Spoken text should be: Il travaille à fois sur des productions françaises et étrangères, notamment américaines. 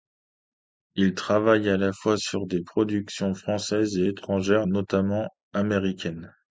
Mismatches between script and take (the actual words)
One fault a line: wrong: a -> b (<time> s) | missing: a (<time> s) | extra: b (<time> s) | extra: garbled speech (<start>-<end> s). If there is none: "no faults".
extra: la (1.8 s)